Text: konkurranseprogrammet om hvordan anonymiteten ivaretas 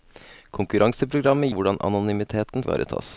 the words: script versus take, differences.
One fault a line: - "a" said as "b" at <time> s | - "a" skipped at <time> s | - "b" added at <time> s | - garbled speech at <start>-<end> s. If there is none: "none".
none